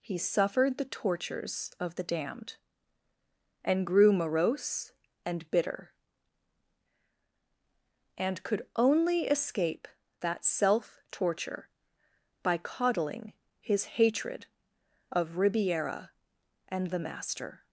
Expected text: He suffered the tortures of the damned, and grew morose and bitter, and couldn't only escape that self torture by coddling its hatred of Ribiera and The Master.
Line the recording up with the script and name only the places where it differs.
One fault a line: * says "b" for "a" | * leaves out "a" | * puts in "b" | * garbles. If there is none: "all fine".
* says "could" for "couldn't"
* says "his" for "its"